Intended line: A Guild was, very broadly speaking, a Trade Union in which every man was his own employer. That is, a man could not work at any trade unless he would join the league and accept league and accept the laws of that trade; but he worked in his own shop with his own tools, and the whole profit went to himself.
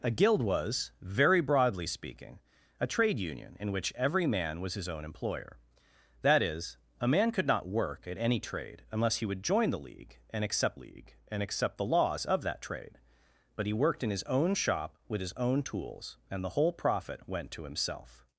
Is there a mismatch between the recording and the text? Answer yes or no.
no